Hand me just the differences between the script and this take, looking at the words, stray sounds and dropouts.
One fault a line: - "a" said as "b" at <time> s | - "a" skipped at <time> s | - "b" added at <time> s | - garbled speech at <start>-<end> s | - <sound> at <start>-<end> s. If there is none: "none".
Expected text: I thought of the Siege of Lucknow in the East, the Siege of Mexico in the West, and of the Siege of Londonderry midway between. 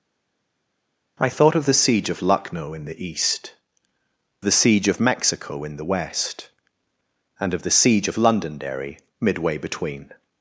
none